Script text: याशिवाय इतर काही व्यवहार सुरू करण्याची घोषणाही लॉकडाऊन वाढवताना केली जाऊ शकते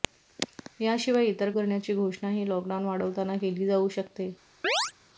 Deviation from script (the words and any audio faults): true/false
true